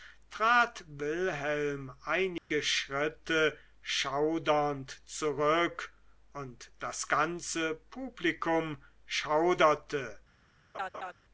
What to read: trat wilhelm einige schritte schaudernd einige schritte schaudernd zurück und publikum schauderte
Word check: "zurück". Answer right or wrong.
wrong